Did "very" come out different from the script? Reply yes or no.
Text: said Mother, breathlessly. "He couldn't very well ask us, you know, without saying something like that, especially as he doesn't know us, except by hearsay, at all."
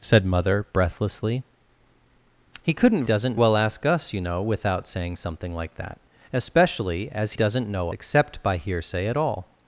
yes